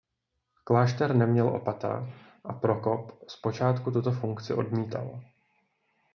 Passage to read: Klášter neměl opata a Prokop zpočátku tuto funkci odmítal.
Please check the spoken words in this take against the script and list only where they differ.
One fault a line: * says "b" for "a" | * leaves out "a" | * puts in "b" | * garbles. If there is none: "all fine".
all fine